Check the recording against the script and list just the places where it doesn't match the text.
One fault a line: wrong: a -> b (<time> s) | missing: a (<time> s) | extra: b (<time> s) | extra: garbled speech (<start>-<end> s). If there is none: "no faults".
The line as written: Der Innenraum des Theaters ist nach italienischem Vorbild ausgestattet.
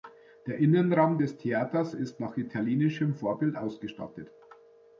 no faults